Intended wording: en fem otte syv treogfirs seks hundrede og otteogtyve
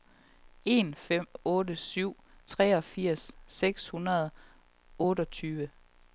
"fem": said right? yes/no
yes